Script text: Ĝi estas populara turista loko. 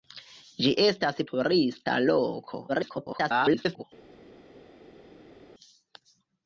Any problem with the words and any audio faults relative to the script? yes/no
yes